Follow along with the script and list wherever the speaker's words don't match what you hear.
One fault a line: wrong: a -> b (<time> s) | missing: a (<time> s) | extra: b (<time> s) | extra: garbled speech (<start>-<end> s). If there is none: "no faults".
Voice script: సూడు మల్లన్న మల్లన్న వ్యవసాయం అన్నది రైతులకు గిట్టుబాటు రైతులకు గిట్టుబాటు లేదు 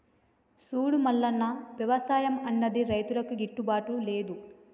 missing: మల్లన్న (1.4 s)
missing: రైతులకు గిట్టుబాటు (4.0 s)